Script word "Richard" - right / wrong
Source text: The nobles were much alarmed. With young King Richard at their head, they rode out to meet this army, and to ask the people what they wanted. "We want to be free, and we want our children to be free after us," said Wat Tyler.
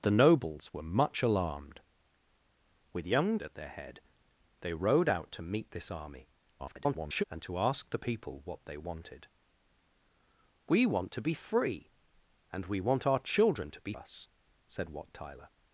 wrong